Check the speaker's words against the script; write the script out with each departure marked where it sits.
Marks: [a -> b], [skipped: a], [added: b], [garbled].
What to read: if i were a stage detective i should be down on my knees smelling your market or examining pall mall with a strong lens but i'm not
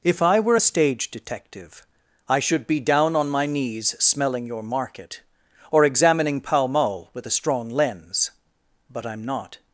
if i were a stage detective i should be down on my knees smelling your market or examining pall mall with a strong lens but i'm not